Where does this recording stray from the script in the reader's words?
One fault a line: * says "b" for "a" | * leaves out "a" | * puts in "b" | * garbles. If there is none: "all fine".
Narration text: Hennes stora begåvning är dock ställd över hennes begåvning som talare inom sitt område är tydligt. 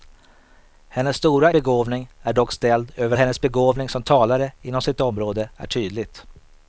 all fine